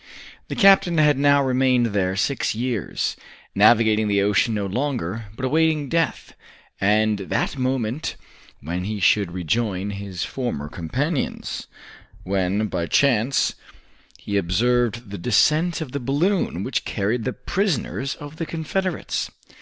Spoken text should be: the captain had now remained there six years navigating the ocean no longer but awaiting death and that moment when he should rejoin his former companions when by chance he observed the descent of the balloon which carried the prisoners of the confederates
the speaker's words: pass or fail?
pass